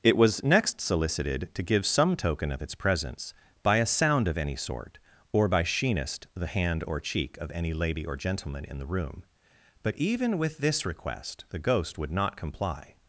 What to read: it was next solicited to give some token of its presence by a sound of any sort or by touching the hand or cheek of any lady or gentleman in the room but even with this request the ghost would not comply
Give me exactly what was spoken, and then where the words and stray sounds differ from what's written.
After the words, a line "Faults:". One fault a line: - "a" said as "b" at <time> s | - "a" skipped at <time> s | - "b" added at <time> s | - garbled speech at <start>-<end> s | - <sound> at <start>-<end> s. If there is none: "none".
it was next solicited to give some token of its presence by a sound of any sort or by sheenest the hand or cheek of any lady or gentleman in the room but even with this request the ghost would not comply
Faults:
- "touching" said as "sheenest" at 5.6 s